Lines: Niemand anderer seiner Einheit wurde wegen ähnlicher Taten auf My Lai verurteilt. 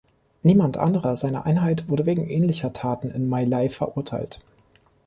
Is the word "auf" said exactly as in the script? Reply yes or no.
no